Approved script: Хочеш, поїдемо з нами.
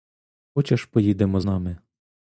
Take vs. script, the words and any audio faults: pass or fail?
fail